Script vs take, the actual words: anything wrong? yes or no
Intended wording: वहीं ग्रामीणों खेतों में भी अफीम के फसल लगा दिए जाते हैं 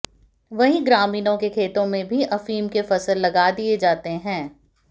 yes